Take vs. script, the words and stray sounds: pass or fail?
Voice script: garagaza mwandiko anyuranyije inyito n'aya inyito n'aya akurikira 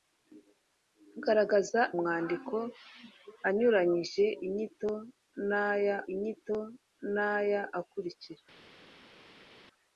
pass